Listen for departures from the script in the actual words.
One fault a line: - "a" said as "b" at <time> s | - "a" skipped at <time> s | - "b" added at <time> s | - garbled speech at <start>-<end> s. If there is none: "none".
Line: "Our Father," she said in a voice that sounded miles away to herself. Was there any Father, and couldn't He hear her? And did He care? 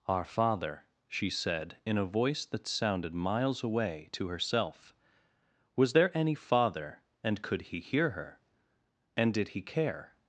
- "couldn't" said as "could" at 7.4 s